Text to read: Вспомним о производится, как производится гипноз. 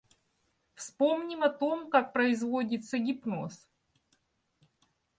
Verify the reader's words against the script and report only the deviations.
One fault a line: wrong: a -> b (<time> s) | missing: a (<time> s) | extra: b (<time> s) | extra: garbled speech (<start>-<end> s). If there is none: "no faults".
wrong: производится -> том (1.5 s)